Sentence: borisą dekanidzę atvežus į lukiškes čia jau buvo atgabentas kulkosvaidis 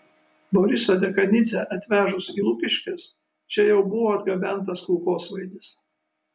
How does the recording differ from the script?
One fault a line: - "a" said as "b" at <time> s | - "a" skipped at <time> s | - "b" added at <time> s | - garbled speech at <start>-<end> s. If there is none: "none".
none